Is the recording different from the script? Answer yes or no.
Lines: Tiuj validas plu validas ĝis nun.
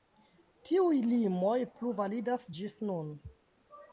yes